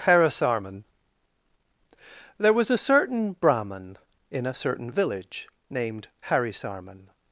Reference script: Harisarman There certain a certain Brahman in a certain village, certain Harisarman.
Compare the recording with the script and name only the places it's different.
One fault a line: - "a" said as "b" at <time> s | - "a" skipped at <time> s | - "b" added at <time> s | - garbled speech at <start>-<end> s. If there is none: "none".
- "certain" said as "was" at 2.5 s
- "certain" said as "named" at 5.7 s